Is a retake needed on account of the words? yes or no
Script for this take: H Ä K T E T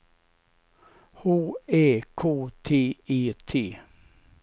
no